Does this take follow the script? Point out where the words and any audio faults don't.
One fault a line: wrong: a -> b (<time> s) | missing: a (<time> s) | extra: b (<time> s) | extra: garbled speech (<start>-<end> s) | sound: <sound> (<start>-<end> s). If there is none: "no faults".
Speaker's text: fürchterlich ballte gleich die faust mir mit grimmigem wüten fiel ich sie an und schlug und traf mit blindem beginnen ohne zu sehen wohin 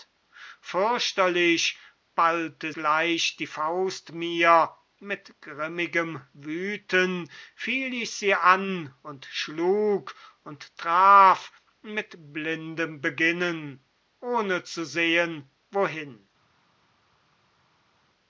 no faults